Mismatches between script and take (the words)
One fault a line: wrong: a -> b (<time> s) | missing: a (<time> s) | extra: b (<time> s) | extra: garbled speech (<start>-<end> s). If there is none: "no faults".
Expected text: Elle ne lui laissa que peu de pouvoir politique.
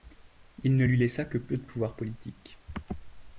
wrong: Elle -> Il (0.6 s)